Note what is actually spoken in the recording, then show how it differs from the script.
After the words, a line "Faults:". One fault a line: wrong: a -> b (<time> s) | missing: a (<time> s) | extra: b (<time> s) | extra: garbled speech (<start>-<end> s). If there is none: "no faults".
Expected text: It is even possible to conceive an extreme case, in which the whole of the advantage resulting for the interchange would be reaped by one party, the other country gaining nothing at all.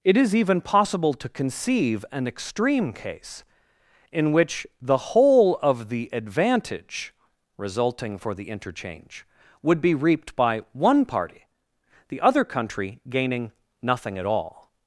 It is even possible to conceive an extreme case, in which the whole of the advantage resulting for the interchange would be reaped by one party, the other country gaining nothing at all.
Faults:
no faults